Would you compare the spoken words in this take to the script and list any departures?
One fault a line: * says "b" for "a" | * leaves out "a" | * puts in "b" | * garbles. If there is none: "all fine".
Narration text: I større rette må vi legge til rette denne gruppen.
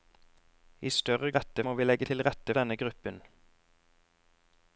all fine